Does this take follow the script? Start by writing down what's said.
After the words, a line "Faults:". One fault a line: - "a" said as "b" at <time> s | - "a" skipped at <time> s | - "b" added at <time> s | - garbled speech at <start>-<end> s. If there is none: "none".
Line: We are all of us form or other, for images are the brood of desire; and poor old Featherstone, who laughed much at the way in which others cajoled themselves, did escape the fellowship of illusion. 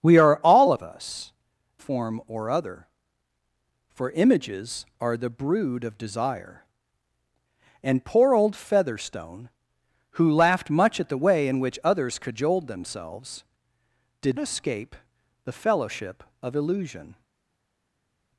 We are all of us form or other, for images are the brood of desire; and poor old Featherstone, who laughed much at the way in which others cajoled themselves, did escape the fellowship of illusion.
Faults:
none